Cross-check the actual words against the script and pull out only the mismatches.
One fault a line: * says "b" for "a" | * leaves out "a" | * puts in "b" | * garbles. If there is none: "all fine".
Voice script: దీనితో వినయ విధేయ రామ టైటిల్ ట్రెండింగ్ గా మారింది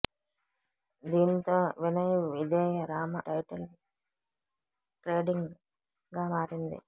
all fine